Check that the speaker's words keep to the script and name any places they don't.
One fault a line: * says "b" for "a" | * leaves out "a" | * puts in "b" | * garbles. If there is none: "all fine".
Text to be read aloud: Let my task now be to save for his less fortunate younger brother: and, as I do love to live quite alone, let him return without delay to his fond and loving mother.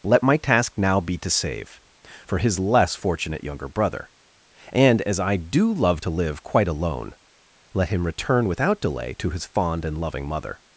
all fine